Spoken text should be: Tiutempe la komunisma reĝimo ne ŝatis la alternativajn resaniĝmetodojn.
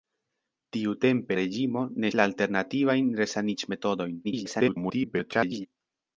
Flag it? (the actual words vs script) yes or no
yes